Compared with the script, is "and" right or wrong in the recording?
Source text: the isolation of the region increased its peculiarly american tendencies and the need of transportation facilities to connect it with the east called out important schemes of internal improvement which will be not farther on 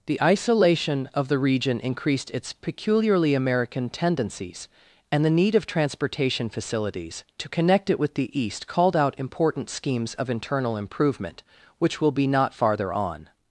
right